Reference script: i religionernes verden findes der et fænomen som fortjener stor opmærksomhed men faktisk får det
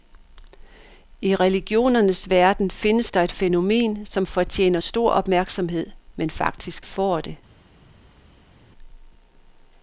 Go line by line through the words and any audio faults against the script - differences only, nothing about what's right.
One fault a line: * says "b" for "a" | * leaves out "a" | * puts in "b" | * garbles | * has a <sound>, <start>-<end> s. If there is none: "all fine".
all fine